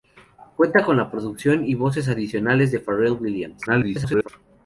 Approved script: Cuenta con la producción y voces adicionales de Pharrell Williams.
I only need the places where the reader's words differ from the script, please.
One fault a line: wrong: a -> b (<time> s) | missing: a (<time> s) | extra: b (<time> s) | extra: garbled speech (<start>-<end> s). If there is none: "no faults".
extra: garbled speech (3.7-4.3 s)